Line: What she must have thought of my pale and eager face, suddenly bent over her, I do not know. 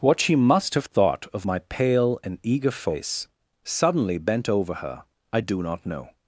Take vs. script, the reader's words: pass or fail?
pass